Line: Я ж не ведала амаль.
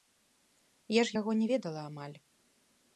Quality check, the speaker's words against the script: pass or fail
fail